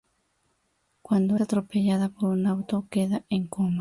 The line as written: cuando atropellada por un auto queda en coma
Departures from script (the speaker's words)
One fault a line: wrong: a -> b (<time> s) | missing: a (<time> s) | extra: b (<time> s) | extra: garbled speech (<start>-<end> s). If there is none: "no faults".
no faults